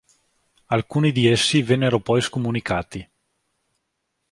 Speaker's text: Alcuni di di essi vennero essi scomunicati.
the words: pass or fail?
fail